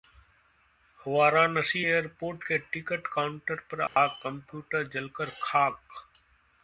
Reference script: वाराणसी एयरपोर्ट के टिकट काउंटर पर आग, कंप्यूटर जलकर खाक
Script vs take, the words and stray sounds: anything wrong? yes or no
yes